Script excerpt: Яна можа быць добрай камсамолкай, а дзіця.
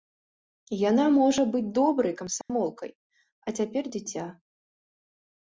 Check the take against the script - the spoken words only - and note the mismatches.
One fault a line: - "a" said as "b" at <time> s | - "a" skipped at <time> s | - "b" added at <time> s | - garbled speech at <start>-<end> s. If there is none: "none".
- "цяпер" added at 3.6 s